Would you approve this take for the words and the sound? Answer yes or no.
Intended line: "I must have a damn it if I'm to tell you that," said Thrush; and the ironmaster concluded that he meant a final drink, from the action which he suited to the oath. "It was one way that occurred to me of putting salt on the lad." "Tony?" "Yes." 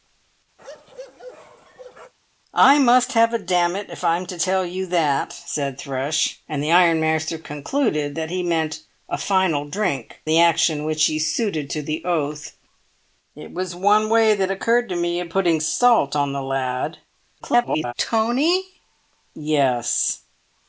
no